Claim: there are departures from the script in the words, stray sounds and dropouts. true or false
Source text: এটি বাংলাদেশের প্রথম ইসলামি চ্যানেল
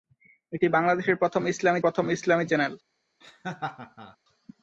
true